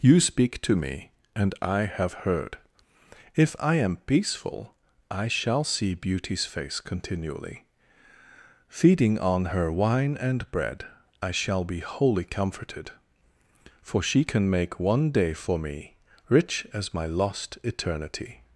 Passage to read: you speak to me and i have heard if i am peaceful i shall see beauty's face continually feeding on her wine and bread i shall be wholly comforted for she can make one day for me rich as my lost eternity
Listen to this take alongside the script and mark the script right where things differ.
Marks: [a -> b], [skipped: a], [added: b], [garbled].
you speak to me and i have heard if i am peaceful i shall see beauty's face continually feeding on her wine and bread i shall be wholly comforted for she can make one day for me rich as my lost eternity